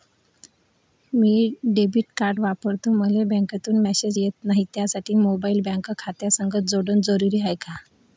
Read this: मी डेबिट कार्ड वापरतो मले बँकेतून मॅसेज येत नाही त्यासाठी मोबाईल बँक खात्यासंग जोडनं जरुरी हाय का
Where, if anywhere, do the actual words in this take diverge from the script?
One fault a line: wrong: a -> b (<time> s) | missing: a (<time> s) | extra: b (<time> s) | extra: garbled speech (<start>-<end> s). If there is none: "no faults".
no faults